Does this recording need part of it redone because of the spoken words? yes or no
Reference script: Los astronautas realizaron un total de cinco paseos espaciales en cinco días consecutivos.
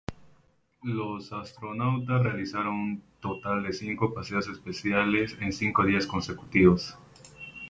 no